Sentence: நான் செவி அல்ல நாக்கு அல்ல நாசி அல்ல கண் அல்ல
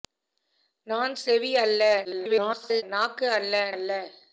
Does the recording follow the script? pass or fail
fail